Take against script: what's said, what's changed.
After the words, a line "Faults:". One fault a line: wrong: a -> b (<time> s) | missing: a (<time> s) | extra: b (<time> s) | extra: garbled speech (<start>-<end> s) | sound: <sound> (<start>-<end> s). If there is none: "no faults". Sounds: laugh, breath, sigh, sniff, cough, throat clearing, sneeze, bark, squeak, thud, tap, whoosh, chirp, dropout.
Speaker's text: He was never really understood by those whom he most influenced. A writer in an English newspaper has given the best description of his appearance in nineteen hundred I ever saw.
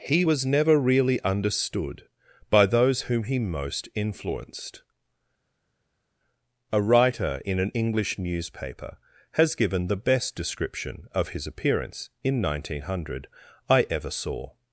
He was never really understood by those whom he most influenced. A writer in an English newspaper has given the best description of his appearance in nineteen hundred I ever saw.
Faults:
no faults